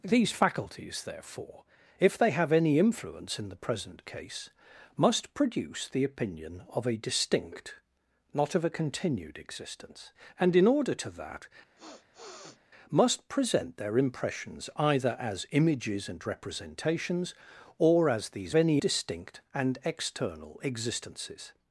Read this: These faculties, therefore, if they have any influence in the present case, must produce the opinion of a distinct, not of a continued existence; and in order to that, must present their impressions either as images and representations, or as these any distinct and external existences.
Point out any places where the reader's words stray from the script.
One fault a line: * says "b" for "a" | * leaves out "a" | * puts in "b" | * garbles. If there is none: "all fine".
all fine